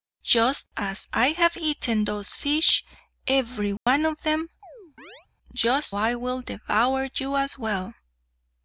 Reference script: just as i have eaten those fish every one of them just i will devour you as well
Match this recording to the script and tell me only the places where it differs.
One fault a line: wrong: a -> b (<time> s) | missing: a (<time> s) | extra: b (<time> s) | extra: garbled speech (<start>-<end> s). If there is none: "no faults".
no faults